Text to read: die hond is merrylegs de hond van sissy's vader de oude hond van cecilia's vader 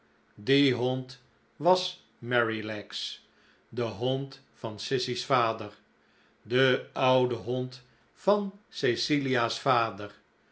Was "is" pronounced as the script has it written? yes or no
no